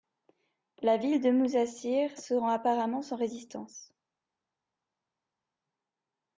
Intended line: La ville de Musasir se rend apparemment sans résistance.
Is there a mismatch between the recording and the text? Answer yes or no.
no